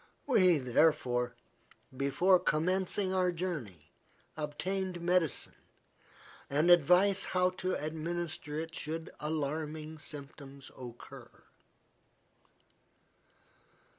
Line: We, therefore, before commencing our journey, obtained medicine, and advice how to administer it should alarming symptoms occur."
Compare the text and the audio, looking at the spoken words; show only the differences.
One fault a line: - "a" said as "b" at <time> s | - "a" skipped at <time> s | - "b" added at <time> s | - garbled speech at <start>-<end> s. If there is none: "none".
none